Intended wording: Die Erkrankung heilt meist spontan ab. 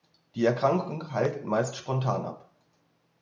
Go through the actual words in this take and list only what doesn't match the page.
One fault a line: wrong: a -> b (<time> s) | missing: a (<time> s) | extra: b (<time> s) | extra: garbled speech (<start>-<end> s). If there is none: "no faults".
no faults